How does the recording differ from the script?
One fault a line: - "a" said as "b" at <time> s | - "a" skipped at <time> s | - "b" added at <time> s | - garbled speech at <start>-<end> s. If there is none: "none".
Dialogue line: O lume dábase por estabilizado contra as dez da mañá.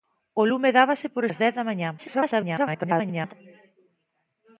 - "estabilizado contra" skipped at 1.2 s
- garbled speech at 2.0-3.3 s